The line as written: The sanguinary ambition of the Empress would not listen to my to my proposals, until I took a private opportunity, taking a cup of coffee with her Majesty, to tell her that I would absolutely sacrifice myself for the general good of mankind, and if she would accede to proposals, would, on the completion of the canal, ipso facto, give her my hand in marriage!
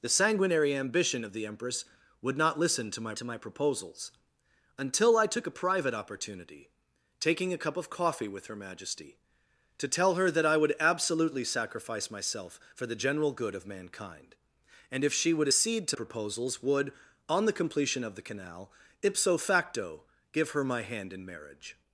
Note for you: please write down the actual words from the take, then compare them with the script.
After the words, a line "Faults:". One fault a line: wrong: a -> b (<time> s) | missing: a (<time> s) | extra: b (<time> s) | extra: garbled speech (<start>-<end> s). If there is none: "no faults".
The sanguinary ambition of the Empress would not listen to my to my proposals, until I took a private opportunity, taking a cup of coffee with her Majesty, to tell her that I would absolutely sacrifice myself for the general good of mankind, and if she would accede to proposals, would, on the completion of the canal, ipso facto, give her my hand in marriage!
Faults:
no faults